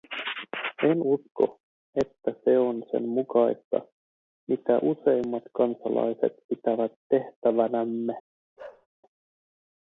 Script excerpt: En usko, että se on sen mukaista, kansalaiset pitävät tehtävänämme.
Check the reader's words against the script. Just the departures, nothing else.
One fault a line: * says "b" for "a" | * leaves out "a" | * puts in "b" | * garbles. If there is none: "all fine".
* puts in "mitä useimmat"